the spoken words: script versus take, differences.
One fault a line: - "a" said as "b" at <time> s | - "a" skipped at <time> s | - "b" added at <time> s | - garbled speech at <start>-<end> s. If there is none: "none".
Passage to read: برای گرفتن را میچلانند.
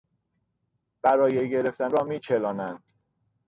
none